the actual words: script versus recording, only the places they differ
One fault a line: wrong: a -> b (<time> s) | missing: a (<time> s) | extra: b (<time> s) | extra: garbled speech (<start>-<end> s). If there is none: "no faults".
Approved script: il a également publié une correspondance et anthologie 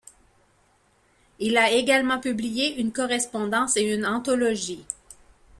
extra: une (3.8 s)